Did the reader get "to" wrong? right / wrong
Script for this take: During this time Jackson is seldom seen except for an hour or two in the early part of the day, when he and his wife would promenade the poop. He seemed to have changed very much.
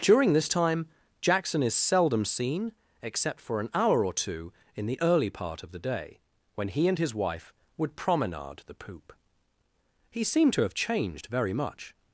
right